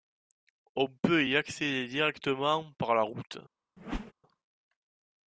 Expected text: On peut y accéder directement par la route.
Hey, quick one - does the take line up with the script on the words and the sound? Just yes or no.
no